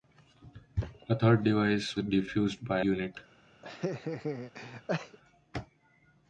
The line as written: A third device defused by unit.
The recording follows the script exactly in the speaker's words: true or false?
true